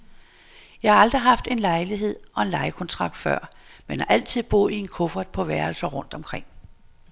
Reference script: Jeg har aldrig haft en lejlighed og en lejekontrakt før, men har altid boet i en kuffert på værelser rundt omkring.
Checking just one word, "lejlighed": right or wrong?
right